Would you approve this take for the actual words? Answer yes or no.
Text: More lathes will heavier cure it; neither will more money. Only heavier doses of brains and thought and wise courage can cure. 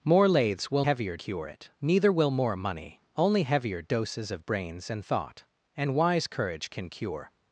yes